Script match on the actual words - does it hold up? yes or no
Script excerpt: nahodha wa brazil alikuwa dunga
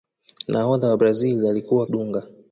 yes